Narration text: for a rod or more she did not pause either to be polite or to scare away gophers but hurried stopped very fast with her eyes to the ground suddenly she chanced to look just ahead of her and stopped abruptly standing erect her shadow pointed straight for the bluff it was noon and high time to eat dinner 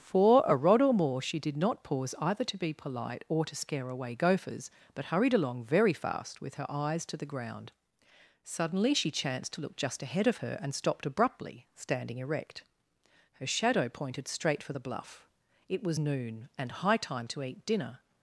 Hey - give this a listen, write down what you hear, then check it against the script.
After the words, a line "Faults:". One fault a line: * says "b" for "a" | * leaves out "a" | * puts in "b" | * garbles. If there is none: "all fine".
for a rod or more she did not pause either to be polite or to scare away gophers but hurried along very fast with her eyes to the ground suddenly she chanced to look just ahead of her and stopped abruptly standing erect her shadow pointed straight for the bluff it was noon and high time to eat dinner
Faults:
* says "along" for "stopped"